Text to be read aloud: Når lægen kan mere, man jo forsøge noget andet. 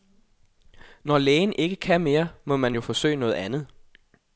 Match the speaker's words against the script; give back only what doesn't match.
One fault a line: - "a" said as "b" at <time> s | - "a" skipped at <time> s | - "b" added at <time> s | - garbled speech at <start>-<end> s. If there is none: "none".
- "ikke" added at 1.5 s
- "må" added at 2.5 s